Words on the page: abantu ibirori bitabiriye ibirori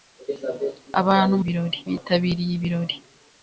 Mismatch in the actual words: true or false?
false